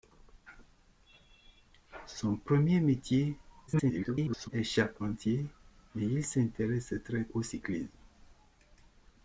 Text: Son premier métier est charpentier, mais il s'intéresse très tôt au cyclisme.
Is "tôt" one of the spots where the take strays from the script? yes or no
yes